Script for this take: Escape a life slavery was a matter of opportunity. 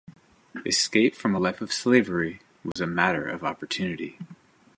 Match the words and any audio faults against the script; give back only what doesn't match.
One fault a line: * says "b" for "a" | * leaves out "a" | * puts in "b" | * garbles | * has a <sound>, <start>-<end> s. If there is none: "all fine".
* puts in "from"
* puts in "of"
* has a dropout, 2.7-2.8 s